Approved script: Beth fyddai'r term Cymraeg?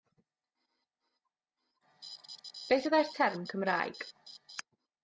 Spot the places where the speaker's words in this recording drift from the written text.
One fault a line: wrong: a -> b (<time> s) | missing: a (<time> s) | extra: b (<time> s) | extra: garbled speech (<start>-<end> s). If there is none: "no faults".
no faults